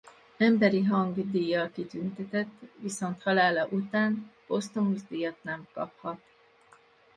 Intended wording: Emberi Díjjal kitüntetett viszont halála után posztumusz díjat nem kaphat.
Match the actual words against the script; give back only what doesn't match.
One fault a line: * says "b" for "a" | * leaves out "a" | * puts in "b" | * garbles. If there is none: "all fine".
* puts in "Hang"